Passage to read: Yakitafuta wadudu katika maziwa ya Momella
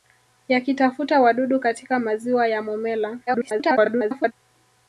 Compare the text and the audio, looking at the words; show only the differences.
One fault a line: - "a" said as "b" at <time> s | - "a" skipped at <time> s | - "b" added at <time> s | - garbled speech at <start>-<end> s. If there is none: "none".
- garbled speech at 3.3-4.3 s